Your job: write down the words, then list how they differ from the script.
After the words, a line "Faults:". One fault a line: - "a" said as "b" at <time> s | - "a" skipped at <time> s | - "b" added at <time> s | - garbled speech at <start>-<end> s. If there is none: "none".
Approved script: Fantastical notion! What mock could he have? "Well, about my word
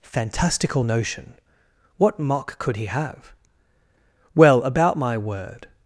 Fantastical notion! What mock could he have? "Well, about my word
Faults:
none